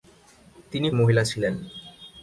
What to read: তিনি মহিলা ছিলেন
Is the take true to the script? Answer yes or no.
yes